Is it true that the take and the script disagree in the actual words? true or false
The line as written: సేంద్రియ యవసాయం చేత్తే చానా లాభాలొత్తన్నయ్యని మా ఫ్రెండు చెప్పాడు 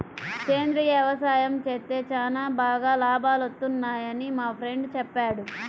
true